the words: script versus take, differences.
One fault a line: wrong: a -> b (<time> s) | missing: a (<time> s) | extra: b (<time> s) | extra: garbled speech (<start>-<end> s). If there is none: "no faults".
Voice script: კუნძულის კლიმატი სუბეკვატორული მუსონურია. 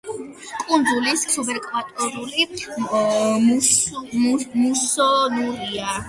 missing: კლიმატი (1.2 s)